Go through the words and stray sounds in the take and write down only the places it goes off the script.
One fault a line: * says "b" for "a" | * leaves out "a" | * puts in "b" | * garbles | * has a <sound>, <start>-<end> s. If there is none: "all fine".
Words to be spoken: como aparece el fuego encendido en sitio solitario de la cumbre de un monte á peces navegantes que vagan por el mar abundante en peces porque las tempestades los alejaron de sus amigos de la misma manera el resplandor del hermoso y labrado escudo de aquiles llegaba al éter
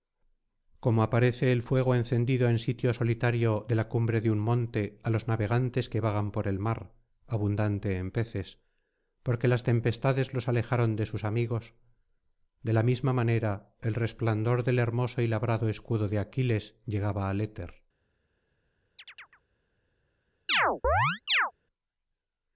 * says "los" for "peces"
* has a chirp, 19.0-19.4 s
* has a chirp, 20.5-21.5 s